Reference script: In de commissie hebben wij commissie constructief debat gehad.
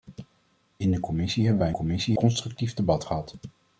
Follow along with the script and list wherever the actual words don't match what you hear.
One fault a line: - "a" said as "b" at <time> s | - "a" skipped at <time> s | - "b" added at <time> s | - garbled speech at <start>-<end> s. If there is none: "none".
none